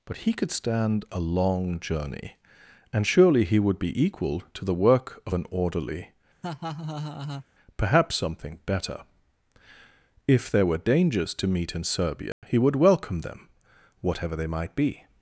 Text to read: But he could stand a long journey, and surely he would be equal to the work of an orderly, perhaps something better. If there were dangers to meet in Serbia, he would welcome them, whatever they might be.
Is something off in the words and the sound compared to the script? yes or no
yes